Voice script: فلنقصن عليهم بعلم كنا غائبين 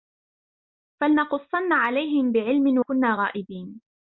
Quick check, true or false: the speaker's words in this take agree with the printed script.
true